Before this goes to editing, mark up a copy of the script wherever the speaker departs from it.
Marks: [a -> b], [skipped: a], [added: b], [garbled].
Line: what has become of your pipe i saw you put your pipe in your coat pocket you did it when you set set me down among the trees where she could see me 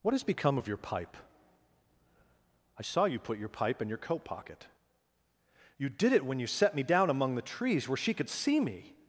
what has become of your pipe i saw you put your pipe in your coat pocket you did it when you set [skipped: set] me down among the trees where she could see me